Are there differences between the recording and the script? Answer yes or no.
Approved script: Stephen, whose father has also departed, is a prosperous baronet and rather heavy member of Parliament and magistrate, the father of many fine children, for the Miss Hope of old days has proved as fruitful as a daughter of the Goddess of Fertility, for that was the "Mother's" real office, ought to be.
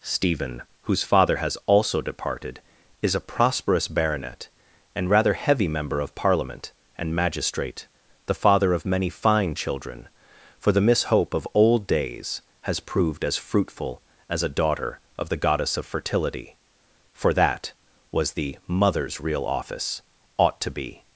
no